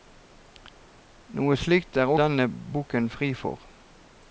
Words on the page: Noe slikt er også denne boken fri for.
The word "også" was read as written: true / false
false